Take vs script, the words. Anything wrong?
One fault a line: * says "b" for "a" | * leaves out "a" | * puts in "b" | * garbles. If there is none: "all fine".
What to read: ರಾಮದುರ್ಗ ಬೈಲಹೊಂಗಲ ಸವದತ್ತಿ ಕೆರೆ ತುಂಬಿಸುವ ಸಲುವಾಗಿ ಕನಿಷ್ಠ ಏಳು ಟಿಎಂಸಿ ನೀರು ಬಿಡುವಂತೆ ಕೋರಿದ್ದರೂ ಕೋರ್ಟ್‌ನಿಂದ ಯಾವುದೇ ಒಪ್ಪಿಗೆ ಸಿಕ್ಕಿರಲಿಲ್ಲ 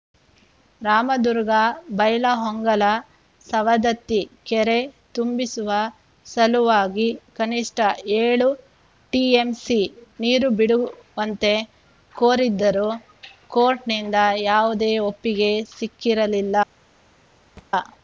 all fine